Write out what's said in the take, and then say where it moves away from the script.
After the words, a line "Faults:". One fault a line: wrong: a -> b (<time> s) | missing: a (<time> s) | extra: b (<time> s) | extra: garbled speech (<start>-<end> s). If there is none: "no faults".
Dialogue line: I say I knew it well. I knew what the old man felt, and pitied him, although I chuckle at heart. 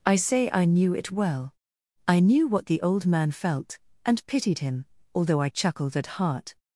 I say I knew it well. I knew what the old man felt, and pitied him, although I chuckled at heart.
Faults:
wrong: chuckle -> chuckled (5.5 s)